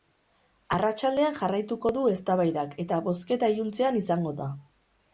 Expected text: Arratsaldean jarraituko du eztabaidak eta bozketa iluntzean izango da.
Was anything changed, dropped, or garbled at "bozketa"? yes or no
no